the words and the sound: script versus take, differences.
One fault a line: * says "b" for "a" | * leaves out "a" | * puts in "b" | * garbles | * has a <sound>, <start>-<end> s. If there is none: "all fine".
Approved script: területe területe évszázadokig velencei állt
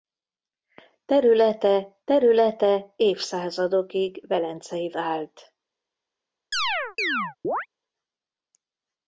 * has a chirp, 6.5-7.7 s